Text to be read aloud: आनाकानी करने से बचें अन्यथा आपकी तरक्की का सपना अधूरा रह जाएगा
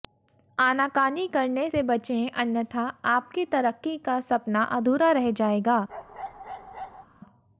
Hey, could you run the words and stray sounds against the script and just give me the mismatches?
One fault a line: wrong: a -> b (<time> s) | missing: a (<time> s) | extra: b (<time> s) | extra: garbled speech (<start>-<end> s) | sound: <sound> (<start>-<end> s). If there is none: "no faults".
sound: bark (5.9-7.1 s)